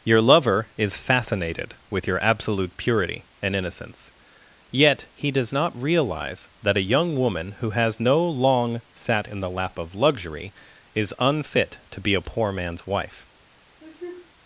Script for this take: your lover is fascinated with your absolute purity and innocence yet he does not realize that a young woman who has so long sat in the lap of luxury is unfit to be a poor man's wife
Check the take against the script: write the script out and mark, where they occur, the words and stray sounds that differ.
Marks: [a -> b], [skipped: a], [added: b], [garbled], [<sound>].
your lover is fascinated with your absolute purity and innocence yet he does not realize that a young woman who has [so -> no] long sat in the lap of luxury is unfit to be a poor man's wife [sneeze]